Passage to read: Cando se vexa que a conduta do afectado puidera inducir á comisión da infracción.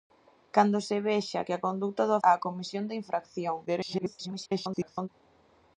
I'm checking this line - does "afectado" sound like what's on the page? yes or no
no